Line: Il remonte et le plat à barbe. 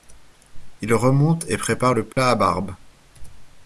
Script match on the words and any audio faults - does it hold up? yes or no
no